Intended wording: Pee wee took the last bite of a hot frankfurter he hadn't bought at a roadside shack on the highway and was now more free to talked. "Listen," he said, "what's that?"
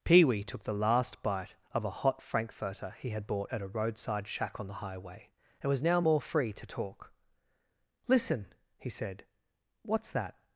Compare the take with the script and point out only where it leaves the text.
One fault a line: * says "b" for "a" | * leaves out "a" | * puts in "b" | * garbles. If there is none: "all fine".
* says "had" for "hadn't"
* says "talk" for "talked"